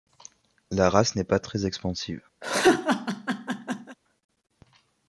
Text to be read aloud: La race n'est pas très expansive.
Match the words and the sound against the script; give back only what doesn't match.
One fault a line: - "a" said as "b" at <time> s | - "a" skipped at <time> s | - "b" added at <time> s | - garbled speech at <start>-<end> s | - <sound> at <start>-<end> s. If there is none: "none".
- laugh at 2.4-4.0 s